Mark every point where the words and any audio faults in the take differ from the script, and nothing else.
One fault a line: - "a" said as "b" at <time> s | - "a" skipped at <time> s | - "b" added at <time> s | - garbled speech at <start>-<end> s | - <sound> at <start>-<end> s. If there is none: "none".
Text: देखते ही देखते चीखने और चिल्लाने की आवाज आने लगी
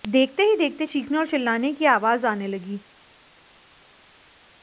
none